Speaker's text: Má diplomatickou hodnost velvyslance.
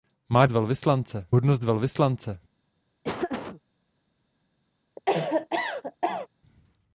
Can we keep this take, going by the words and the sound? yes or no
no